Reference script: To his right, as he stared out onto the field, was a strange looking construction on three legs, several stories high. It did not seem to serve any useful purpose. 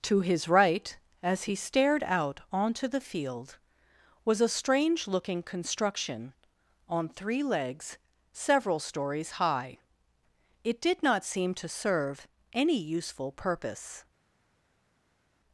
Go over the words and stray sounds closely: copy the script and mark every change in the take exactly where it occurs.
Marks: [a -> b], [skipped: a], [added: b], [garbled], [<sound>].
To his right, as he stared out onto the field, was a strange looking construction on three legs, several stories high. It did not seem to serve any useful purpose.